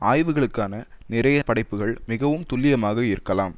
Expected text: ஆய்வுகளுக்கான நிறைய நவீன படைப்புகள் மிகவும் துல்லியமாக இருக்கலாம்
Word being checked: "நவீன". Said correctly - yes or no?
no